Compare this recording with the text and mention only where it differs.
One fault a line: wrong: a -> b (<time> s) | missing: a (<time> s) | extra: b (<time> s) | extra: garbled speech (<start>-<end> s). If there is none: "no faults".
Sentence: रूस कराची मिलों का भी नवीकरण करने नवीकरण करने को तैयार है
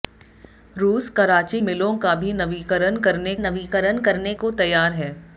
no faults